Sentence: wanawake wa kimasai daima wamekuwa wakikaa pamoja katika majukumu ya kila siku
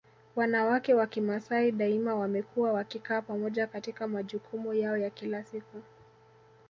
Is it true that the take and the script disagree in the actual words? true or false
true